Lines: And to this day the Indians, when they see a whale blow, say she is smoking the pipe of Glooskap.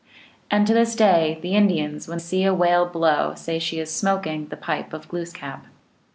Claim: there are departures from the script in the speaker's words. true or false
true